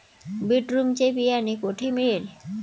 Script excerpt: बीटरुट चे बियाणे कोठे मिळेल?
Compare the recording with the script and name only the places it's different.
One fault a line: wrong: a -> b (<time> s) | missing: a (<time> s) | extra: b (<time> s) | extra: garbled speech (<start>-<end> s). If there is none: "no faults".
no faults